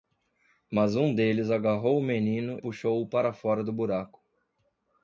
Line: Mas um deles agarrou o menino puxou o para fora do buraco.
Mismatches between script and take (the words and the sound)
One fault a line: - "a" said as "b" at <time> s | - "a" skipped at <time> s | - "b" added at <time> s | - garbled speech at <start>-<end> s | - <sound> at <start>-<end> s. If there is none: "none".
none